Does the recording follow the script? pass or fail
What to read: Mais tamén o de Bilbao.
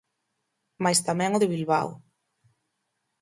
pass